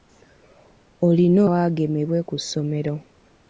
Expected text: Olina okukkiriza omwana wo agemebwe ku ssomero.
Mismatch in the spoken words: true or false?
true